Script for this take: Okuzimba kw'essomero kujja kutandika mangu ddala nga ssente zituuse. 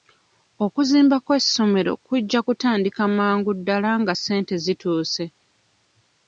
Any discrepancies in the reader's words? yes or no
no